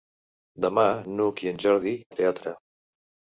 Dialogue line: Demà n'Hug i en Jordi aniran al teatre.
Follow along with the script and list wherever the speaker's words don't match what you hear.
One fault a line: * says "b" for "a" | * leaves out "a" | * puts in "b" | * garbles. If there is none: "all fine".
* leaves out "aniran"